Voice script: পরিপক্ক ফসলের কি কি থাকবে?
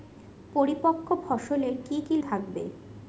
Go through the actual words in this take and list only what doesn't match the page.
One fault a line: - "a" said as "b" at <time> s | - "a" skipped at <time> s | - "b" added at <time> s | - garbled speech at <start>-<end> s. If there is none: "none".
none